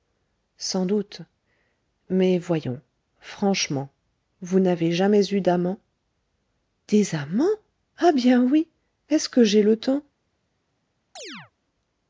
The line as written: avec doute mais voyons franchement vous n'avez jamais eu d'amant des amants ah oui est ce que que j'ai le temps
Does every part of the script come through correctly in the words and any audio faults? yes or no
no